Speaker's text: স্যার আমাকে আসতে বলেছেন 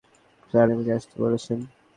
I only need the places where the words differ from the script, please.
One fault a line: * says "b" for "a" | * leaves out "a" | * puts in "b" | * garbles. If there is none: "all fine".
all fine